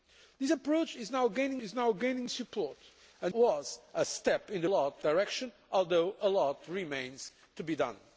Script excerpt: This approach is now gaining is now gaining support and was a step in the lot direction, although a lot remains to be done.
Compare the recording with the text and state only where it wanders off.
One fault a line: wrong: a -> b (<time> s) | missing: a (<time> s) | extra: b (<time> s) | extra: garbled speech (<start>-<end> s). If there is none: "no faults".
no faults